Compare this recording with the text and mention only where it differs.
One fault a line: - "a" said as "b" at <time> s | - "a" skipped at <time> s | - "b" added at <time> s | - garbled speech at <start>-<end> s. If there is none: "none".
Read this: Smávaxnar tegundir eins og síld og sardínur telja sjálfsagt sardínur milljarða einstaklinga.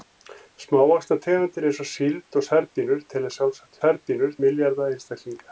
none